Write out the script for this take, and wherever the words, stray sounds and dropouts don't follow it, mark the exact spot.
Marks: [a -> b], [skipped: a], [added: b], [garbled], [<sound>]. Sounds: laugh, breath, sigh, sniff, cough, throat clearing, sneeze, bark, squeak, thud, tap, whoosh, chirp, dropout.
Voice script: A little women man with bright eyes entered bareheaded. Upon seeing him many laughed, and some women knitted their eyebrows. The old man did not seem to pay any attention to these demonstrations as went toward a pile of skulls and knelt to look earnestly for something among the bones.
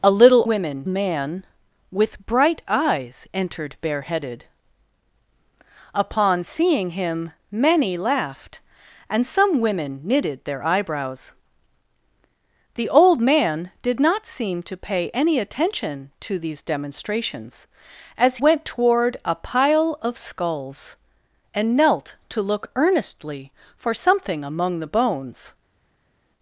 A little women man with bright eyes entered bareheaded. Upon seeing him many laughed, and some women knitted their eyebrows. The old man did not seem to pay any attention to these demonstrations as went toward a pile of skulls and knelt to look earnestly for something among the bones.